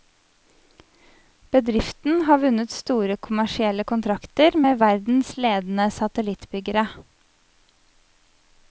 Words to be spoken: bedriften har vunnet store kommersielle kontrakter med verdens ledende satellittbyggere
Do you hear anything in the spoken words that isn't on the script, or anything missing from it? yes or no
no